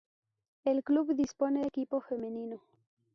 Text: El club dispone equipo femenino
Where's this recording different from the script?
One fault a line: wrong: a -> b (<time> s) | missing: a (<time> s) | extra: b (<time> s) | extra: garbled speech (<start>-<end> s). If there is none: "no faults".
no faults